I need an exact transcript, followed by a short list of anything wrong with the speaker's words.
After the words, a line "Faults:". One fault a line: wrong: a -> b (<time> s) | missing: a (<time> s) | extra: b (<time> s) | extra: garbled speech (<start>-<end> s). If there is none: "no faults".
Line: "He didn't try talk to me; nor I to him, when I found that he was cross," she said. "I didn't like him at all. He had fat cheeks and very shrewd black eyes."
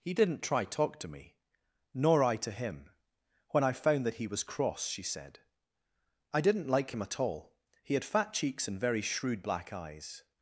"He didn't try talk to me; nor I to him, when I found that he was cross," she said. "I didn't like him at all. He had fat cheeks and very shrewd black eyes."
Faults:
no faults